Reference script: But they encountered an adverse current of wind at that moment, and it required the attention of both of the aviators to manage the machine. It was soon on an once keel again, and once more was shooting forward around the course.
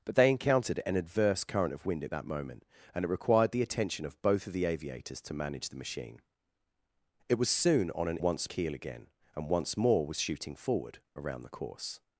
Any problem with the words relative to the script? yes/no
no